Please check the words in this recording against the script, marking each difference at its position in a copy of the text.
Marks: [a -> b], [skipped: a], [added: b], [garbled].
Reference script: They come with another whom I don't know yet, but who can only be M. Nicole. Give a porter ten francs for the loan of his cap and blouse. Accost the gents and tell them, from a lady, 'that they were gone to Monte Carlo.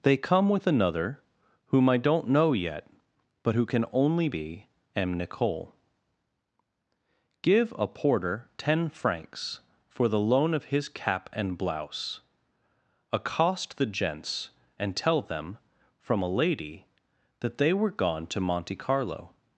They come with another whom I don't know yet, but who can only be M. Nicole. Give a porter ten francs for the loan of his cap and blouse. Accost the gents and tell them, from a lady, 'that they were gone to Monte Carlo.